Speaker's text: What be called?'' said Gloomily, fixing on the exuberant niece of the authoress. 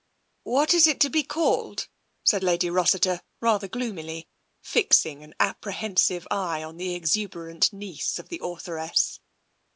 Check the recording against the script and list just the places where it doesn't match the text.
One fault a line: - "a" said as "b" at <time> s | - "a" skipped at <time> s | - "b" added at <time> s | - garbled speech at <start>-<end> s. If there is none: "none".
- "is it to" added at 0.7 s
- "Lady Rossiter rather" added at 2.4 s
- "an apprehensive eye" added at 5.2 s